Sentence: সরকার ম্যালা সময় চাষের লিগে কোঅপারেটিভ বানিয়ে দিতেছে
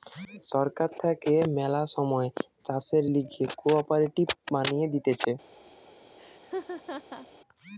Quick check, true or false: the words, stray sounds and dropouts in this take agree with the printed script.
false